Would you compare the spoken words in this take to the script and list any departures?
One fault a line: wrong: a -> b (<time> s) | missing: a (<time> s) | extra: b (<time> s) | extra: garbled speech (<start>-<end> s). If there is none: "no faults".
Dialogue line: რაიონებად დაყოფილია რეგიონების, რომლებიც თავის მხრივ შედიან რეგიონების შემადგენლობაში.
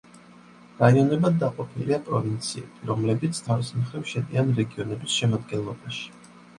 wrong: რეგიონების -> პროვინციები (2.1 s)